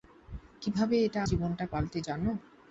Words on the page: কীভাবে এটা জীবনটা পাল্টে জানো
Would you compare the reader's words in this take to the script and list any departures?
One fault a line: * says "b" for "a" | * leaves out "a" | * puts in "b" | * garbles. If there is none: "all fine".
all fine